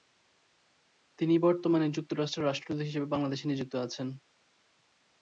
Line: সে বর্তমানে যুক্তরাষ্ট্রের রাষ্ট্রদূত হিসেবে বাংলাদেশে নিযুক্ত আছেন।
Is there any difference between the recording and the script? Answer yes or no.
yes